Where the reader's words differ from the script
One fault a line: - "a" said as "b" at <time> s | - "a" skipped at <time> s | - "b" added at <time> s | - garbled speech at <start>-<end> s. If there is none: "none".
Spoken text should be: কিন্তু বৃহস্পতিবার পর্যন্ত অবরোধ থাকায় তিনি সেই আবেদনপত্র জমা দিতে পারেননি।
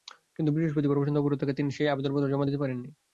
none